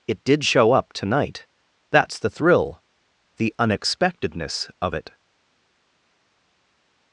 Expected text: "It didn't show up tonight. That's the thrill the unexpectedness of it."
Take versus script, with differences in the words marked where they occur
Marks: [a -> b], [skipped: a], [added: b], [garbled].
"It [didn't -> did] show up tonight. That's the thrill the unexpectedness of it."